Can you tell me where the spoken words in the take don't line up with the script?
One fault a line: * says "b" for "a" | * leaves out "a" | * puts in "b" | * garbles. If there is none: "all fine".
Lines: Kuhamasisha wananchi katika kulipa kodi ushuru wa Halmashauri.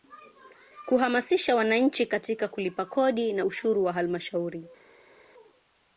* puts in "na"